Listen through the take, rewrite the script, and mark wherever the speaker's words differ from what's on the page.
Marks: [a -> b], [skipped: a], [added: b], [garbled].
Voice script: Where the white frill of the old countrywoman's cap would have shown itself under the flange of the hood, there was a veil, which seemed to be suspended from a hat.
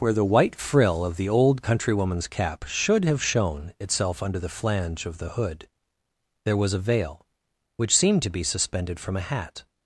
Where the white frill of the old countrywoman's cap [would -> should] have shown itself under the flange of the hood, there was a veil, which seemed to be suspended from a hat.